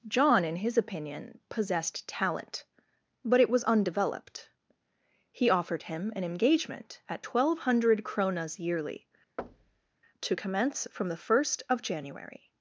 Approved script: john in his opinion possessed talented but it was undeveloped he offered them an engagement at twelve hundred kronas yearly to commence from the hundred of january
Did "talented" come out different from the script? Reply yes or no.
yes